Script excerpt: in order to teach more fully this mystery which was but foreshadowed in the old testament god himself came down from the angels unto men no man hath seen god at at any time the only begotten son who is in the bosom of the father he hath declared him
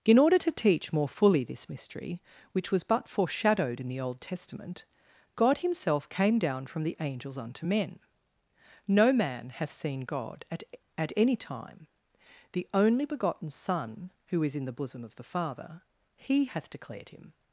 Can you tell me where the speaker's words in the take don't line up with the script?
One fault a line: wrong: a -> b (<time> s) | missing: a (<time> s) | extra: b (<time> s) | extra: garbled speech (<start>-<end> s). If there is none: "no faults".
no faults